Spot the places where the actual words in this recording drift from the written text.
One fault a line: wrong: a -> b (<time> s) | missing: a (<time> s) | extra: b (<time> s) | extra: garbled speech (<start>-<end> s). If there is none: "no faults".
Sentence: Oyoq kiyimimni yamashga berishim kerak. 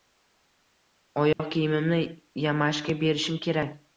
no faults